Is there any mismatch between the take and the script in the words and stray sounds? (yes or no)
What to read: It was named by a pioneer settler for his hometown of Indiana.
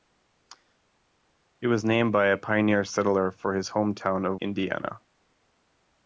no